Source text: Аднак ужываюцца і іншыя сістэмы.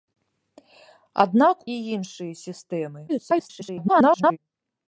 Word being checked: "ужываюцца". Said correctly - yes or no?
no